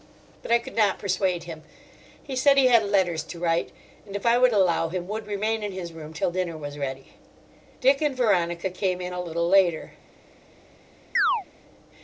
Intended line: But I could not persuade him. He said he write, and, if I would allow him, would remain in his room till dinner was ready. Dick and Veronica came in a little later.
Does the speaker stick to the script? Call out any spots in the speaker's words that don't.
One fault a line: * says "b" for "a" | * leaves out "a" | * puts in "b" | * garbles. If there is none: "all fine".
* puts in "had letters to"